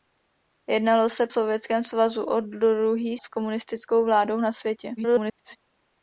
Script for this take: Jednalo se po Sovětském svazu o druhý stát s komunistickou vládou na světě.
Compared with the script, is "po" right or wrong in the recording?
wrong